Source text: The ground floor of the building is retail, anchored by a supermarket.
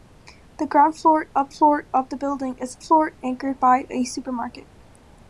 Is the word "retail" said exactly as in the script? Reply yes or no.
no